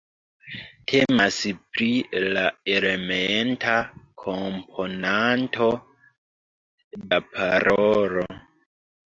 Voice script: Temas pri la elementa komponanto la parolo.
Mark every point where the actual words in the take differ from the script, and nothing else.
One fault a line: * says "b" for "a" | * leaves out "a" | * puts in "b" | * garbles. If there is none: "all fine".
all fine